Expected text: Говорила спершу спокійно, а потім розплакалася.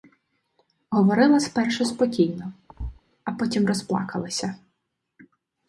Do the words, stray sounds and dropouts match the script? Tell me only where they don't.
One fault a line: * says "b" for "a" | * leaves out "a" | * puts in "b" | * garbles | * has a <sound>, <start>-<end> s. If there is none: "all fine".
* has a thud, 2.7-3.0 s